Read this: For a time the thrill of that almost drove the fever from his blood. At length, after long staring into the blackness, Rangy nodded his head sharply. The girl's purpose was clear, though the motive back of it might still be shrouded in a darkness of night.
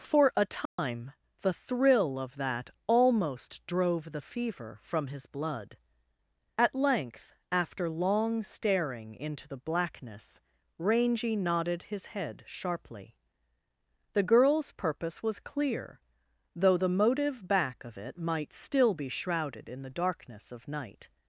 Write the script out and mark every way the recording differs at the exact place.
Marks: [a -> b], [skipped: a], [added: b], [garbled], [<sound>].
For a time [dropout] the thrill of that almost drove the fever from his blood. At length, after long staring into the blackness, Rangy nodded his head sharply. The girl's purpose was clear, though the motive back of it might still be shrouded in [a -> the] darkness of night.